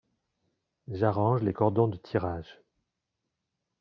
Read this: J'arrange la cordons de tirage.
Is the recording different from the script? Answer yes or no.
yes